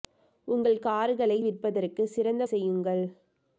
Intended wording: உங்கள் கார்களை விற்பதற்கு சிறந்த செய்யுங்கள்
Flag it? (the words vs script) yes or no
no